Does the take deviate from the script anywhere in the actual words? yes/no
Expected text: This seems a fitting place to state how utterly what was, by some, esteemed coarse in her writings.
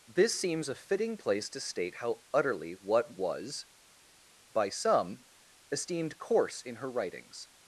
no